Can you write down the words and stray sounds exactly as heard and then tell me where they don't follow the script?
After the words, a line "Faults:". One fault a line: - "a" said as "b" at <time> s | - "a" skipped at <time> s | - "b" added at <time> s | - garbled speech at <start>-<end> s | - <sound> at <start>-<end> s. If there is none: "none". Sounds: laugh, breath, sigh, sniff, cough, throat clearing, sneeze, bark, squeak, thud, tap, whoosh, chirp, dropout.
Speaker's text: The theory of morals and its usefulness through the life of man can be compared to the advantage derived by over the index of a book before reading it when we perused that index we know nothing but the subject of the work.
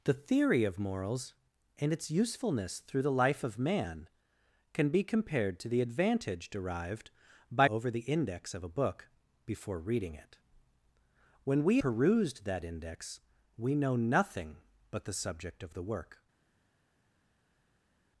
The theory of morals and its usefulness through the life of man can be compared to the advantage derived by over the index of a book before reading it when we perused that index we know nothing but the subject of the work.
Faults:
none